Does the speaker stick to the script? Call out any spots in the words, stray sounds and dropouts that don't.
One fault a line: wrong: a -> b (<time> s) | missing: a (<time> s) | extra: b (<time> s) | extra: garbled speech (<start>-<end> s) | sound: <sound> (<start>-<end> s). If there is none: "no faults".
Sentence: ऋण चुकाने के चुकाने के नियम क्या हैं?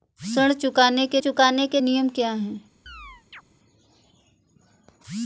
sound: chirp (2.9-3.4 s)